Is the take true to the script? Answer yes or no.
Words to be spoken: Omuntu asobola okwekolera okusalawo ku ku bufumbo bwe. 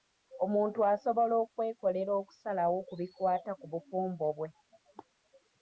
no